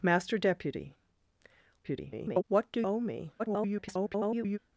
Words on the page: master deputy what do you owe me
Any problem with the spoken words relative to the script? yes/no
yes